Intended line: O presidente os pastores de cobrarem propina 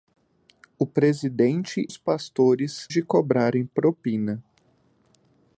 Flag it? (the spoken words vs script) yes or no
no